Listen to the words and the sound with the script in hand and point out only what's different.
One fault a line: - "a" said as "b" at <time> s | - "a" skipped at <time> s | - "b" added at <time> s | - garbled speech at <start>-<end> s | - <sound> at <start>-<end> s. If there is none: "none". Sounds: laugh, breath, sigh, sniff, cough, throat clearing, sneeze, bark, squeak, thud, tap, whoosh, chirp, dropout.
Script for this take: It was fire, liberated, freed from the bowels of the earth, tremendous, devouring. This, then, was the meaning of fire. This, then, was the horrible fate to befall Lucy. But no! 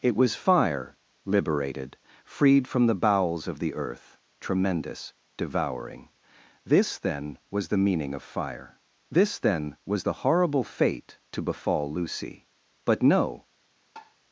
- tap at 14.0-14.2 s